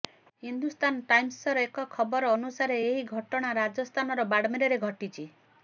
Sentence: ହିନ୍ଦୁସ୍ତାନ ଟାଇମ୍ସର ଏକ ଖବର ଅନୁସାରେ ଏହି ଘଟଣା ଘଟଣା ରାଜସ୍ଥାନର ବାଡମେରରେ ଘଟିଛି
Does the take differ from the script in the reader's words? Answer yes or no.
yes